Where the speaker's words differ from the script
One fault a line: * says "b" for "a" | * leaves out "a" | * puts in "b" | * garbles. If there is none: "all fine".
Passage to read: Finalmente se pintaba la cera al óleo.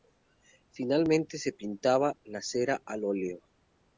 all fine